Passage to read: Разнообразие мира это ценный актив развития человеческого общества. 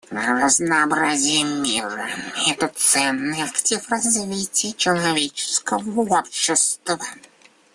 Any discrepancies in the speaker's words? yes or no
no